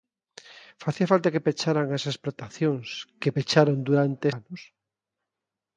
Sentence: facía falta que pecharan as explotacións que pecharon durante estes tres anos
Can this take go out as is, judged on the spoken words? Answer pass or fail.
fail